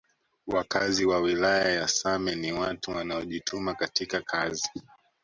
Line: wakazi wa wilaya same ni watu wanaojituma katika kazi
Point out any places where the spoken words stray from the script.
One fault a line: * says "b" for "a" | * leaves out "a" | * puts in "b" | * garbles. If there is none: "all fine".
* puts in "ya"